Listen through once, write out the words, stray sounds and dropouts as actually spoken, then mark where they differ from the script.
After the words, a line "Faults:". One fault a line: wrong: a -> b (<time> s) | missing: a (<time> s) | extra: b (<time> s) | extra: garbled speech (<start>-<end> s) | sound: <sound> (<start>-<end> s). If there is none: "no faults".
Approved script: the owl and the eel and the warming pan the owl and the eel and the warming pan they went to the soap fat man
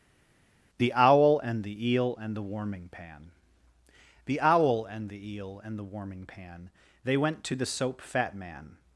the owl and the eel and the warming pan the owl and the eel and the warming pan they went to the soap fat man
Faults:
no faults